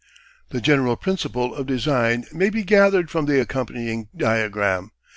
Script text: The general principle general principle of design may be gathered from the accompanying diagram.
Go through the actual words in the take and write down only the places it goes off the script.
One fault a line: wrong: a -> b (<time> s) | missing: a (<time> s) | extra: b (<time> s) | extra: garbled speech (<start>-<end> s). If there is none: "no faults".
missing: general principle (1.5 s)